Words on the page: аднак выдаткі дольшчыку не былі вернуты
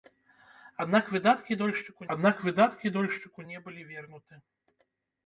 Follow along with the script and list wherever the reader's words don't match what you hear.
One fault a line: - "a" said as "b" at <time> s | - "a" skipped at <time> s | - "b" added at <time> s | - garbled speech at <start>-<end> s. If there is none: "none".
- "аднак выдаткі дольшчыку" added at 2.2 s